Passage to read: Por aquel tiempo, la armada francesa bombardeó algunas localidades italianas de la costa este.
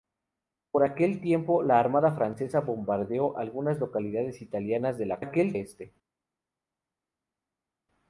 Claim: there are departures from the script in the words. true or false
true